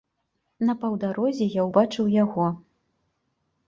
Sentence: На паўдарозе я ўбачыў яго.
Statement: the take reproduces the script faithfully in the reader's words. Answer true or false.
true